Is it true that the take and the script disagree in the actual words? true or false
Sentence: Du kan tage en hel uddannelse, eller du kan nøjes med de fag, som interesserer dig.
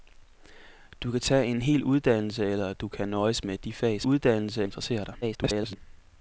true